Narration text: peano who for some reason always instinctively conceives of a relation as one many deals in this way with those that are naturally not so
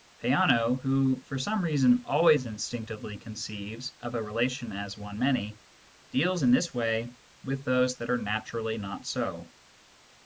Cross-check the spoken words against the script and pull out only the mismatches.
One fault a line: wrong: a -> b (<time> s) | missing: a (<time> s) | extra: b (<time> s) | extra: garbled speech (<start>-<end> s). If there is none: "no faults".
no faults